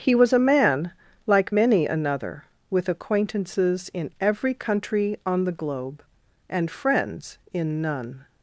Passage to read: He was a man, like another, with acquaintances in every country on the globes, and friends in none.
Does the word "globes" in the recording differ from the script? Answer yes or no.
yes